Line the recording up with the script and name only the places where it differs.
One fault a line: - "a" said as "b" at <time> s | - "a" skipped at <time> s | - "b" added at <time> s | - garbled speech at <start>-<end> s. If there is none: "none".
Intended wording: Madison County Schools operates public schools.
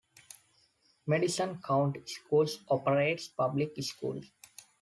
none